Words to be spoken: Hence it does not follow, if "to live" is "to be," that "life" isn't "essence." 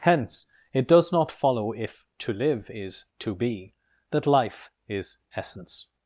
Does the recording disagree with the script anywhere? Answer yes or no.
yes